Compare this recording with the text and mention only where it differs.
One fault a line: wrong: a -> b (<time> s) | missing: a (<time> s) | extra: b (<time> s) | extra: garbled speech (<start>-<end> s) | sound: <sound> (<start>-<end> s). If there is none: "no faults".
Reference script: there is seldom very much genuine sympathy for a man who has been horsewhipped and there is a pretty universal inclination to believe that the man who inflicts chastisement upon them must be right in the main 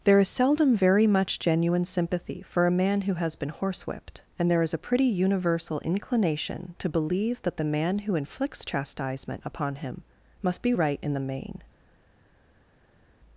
wrong: them -> him (9.8 s)